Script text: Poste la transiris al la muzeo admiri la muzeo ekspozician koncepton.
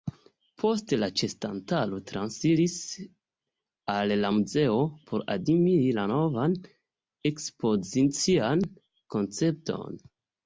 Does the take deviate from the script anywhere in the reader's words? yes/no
yes